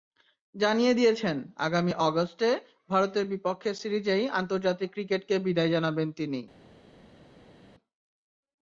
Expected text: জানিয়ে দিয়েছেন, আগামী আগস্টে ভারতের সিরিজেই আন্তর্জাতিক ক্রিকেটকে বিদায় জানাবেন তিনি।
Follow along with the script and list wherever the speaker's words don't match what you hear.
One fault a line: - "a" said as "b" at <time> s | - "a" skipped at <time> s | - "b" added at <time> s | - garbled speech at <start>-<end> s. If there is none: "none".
- "বিপক্ষে" added at 3.3 s